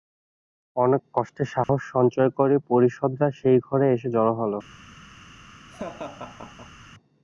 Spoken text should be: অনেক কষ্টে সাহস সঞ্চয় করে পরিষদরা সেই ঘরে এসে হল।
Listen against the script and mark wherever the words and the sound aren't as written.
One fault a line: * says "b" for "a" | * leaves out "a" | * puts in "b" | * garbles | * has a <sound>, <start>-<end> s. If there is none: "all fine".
* has a dropout, 1.6-1.7 s
* puts in "জড়ো"
* has a laugh, 5.7-6.9 s